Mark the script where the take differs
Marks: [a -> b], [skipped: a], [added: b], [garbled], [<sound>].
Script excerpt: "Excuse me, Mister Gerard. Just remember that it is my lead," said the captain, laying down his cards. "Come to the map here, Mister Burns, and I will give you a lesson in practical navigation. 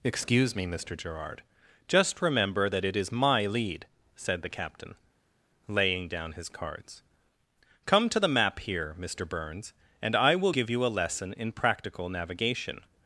"Excuse me, Mister Gerard. Just remember that it is my lead," said the captain, laying down his cards. "Come to the map here, Mister Burns, and I will give you a lesson in practical navigation.